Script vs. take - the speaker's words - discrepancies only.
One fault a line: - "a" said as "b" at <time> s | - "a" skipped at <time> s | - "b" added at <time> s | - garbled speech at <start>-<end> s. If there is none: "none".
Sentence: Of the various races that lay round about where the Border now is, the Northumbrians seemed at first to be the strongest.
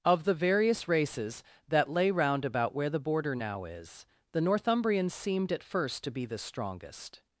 none